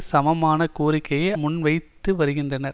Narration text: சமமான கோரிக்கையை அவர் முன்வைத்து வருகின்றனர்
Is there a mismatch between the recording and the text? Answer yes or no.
yes